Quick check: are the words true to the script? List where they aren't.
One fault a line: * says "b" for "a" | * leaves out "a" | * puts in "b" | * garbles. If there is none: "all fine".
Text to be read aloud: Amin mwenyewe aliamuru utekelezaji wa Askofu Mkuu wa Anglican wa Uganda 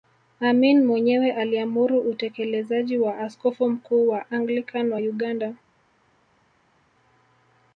all fine